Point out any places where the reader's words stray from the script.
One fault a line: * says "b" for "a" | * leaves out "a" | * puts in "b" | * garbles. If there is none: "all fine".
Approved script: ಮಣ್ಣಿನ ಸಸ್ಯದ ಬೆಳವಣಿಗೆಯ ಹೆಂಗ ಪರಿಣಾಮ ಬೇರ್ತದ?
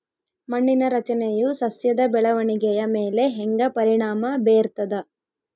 * puts in "ರಚನೆಯು"
* puts in "ಮೇಲೆ"